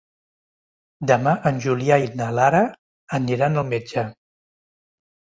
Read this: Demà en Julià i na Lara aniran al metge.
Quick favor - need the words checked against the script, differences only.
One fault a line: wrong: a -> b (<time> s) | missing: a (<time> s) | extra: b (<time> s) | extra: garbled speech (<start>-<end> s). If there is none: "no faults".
no faults